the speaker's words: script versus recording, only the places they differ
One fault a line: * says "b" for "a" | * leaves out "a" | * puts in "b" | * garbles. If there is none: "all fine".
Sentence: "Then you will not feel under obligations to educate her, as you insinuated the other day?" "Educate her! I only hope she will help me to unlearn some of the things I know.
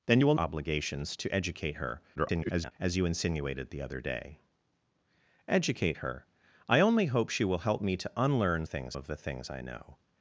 * leaves out "not feel under"
* garbles
* says "things" for "some"